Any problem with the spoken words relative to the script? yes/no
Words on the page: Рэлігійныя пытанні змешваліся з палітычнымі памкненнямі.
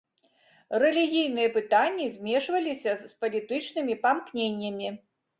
no